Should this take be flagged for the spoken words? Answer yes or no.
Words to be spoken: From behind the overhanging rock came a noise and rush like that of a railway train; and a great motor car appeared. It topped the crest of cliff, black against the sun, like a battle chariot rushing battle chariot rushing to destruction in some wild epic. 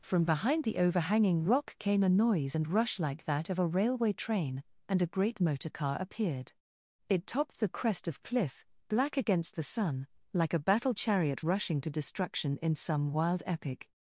yes